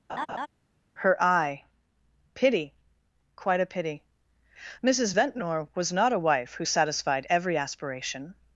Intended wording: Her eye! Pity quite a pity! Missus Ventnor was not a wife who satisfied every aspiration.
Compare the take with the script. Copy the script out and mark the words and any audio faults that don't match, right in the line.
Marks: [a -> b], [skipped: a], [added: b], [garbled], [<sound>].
[laugh] Her eye! Pity quite a pity! Missus Ventnor was not a wife who satisfied every aspiration.